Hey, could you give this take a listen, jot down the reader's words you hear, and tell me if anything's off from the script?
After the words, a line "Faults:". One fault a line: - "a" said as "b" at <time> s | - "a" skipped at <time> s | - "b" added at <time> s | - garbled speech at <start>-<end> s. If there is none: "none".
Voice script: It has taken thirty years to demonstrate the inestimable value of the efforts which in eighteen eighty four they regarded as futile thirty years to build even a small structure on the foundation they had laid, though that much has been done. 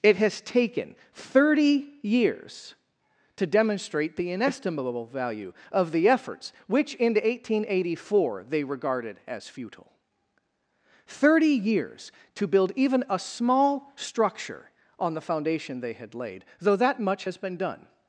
It has taken thirty years to demonstrate the inestimable value of the efforts which in eighteen eighty four they regarded as futile thirty years to build even a small structure on the foundation they had laid, though that much has been done.
Faults:
none